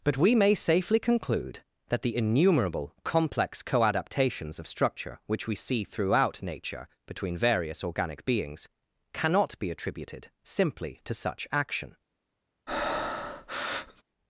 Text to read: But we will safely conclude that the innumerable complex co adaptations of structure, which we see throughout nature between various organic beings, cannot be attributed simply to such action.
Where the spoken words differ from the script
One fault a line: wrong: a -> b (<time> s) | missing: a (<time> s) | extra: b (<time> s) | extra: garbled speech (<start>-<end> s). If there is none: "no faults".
wrong: will -> may (0.3 s)